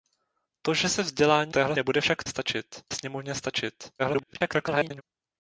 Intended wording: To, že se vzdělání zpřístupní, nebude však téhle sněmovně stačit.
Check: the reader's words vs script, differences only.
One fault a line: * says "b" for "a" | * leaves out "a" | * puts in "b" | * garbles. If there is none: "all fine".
* says "téhle" for "zpřístupní"
* says "stačit" for "téhle"
* garbles